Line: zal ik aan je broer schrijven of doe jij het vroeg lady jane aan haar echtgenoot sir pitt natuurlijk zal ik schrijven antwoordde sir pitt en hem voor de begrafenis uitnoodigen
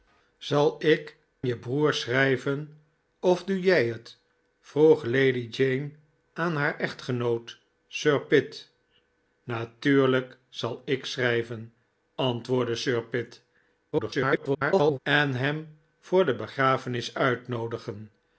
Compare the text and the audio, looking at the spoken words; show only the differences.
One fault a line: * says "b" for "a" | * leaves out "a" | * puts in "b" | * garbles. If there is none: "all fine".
* leaves out "aan"
* garbles